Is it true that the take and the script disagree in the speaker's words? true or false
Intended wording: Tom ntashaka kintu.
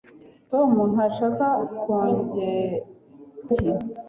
false